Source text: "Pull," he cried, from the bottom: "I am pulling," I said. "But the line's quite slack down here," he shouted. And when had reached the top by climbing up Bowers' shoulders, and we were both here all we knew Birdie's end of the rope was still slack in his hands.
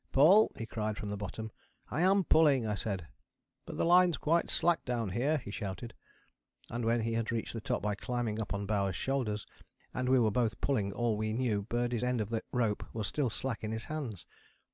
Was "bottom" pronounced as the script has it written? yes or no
yes